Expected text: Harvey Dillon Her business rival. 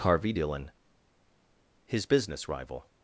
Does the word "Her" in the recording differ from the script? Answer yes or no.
yes